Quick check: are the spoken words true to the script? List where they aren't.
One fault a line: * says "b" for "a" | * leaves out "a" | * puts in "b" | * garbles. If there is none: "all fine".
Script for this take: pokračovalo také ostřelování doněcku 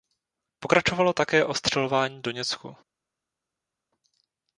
all fine